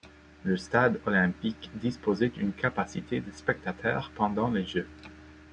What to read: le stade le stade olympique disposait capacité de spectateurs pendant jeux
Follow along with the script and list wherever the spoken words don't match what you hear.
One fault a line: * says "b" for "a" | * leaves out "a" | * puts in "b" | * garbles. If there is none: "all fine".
* leaves out "le stade"
* puts in "d'une"
* puts in "les"